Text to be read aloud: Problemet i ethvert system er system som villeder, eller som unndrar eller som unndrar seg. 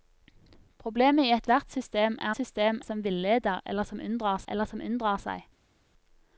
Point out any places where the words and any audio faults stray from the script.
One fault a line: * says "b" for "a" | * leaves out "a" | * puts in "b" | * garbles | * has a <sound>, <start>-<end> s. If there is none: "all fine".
all fine